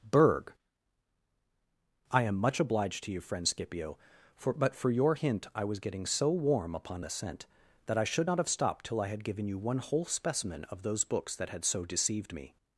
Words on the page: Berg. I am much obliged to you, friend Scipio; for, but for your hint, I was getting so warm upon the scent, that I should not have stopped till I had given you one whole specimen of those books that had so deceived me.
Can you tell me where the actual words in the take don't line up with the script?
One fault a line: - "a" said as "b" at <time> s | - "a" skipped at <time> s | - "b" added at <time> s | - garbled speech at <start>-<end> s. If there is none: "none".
none